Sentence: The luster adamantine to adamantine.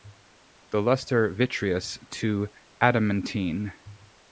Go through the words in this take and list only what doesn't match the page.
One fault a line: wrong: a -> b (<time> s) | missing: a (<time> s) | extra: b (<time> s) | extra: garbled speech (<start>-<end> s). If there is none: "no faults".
wrong: adamantine -> vitreous (1.3 s)